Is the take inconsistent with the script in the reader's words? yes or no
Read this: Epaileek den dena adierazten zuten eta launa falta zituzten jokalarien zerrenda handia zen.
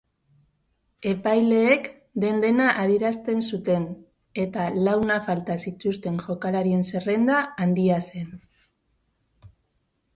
no